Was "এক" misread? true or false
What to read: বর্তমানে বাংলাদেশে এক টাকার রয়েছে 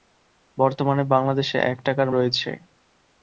false